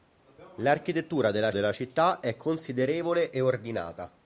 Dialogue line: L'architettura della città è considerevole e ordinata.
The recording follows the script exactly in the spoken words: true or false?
false